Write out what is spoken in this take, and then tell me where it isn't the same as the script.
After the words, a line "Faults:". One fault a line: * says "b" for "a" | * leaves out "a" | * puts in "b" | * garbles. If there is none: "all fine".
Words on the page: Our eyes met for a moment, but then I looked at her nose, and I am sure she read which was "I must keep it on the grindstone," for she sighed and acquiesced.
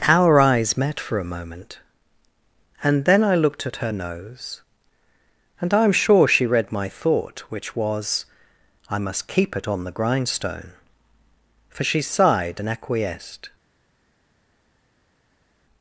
Our eyes met for a moment, and then I looked at her nose, and I am sure she read my thought, which was "I must keep it on the grindstone," for she sighed and acquiesced.
Faults:
* says "and" for "but"
* puts in "my thought"